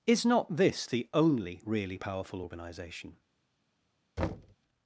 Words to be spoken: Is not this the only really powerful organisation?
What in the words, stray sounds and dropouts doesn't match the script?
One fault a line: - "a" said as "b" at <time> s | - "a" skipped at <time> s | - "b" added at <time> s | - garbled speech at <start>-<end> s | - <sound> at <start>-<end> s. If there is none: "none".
- thud at 4.2-4.5 s